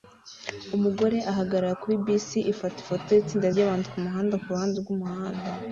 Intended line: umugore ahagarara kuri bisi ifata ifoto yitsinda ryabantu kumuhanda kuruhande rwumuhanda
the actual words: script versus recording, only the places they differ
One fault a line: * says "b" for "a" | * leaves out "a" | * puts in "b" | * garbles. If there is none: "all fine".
all fine